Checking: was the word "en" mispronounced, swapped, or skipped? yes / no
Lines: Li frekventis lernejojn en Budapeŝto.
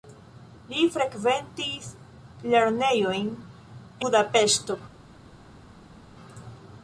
yes